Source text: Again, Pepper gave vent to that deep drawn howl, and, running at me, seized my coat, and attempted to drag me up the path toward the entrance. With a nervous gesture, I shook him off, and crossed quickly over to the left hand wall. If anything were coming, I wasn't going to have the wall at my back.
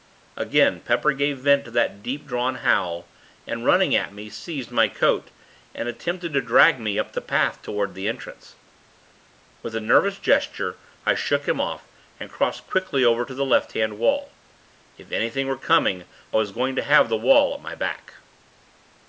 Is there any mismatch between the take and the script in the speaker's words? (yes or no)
yes